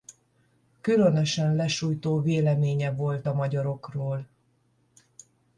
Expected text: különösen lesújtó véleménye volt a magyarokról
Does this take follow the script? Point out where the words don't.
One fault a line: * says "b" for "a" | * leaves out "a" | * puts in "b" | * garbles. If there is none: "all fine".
all fine